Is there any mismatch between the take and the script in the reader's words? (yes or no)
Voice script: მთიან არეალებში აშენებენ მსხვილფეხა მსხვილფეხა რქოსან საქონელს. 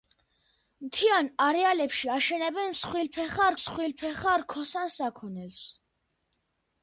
no